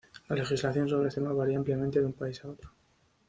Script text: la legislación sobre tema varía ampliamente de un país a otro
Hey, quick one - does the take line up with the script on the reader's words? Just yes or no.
yes